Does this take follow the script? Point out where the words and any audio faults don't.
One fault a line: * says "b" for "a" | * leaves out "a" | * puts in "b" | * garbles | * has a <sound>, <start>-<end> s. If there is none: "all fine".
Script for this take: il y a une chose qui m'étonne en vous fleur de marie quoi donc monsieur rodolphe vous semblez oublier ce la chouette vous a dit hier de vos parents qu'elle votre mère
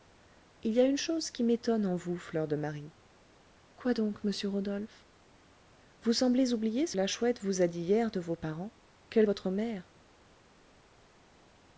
all fine